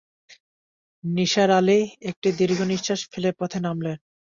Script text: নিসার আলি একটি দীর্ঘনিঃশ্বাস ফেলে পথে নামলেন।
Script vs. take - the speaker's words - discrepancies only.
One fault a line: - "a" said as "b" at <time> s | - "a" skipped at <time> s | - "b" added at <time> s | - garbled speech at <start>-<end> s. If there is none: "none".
none